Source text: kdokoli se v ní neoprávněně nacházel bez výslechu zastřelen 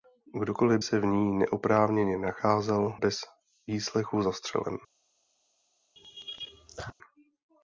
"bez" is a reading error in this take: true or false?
false